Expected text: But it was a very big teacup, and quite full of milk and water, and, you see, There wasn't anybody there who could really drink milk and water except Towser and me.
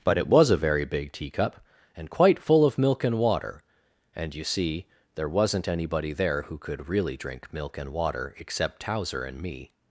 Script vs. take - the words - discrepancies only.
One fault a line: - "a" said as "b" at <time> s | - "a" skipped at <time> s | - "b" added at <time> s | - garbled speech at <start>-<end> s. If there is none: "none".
none